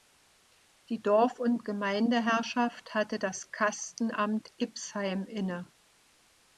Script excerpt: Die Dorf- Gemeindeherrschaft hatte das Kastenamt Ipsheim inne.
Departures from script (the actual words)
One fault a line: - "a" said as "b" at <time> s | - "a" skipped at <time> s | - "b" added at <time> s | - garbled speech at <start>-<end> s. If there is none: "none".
- "und" added at 1.4 s